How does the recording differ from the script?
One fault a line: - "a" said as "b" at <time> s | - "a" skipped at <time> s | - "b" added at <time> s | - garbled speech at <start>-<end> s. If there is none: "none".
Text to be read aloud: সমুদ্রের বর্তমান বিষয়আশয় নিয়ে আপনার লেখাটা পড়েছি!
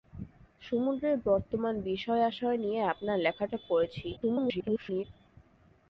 - garbled speech at 4.2-5.0 s